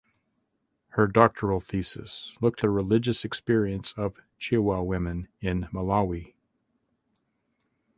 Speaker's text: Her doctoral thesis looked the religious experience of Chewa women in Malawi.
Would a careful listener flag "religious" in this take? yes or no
no